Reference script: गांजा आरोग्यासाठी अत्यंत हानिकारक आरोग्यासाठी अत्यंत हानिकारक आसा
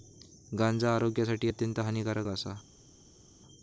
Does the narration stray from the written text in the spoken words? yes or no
yes